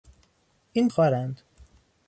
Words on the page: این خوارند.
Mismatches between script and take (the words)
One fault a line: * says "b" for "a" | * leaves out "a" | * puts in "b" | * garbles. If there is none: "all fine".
all fine